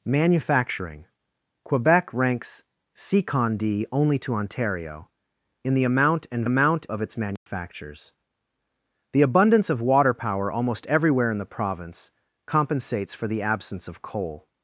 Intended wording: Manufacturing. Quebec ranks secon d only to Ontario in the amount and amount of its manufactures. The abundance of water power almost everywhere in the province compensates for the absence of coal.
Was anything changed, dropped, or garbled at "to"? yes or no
no